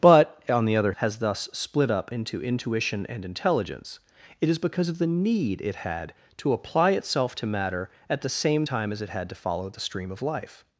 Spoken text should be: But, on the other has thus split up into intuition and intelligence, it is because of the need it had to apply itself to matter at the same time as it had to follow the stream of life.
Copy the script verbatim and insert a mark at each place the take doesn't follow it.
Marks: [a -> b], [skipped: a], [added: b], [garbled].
But, on the other has thus split up into intuition and intelligence, it is because of the need it had to apply itself to matter at the same time as it had to follow the stream of life.